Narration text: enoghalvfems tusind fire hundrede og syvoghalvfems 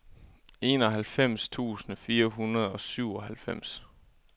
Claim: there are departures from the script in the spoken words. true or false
false